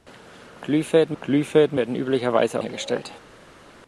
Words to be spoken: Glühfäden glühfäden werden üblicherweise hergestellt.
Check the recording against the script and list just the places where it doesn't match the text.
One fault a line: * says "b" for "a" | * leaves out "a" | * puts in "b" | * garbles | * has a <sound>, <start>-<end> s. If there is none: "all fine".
all fine